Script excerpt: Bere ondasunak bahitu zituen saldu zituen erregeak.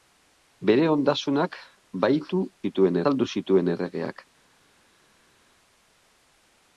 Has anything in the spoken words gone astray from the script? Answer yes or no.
no